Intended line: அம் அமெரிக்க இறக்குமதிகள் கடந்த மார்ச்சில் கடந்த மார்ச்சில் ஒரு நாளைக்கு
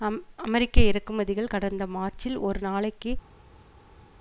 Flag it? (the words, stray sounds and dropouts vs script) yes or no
yes